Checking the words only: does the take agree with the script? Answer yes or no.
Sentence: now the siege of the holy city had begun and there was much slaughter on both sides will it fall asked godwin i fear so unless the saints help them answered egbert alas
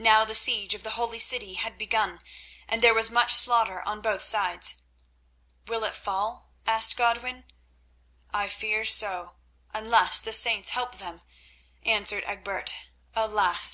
yes